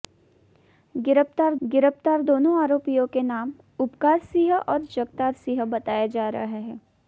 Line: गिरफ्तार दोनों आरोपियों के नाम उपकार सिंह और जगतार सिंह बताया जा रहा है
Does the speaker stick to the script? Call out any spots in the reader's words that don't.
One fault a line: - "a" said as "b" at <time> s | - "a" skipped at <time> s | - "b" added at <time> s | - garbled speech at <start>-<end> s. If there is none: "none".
- "गिरफ्तार" added at 1.6 s